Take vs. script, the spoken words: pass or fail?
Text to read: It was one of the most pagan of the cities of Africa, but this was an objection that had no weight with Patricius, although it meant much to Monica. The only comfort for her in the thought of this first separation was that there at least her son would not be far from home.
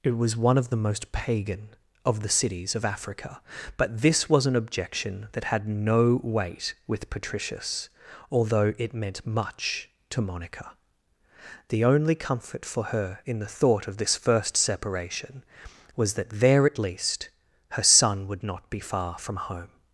pass